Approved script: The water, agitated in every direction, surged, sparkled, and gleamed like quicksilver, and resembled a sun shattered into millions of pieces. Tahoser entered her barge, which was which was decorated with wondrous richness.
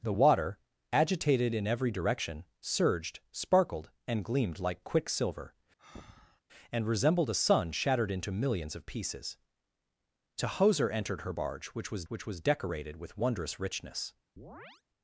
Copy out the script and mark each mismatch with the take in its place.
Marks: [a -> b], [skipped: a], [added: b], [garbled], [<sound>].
The water, agitated in every direction, surged, sparkled, and gleamed like quicksilver, [breath] and resembled a sun shattered into millions of pieces. Tahoser entered her barge, which was which was decorated with wondrous richness. [chirp]